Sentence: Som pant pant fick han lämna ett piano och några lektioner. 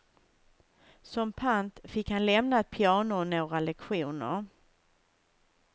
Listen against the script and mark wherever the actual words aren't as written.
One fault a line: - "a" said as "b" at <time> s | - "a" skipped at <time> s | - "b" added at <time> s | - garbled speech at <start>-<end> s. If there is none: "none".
- "pant" skipped at 1.8 s